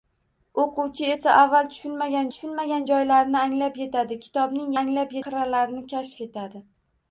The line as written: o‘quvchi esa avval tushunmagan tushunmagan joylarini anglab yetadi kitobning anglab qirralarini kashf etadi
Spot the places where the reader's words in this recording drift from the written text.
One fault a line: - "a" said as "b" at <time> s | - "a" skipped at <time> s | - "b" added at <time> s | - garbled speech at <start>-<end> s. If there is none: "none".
none